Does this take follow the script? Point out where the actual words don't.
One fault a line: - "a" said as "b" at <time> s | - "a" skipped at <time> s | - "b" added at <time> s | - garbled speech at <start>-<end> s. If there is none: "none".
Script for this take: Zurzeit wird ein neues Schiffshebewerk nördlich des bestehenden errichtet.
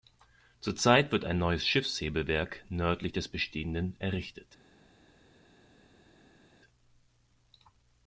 none